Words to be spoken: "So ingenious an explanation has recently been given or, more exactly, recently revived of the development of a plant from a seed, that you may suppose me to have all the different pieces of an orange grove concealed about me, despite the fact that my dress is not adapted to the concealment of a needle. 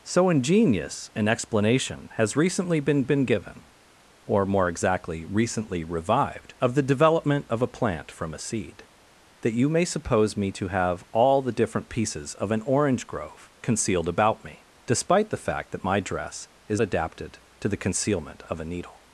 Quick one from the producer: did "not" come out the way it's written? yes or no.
no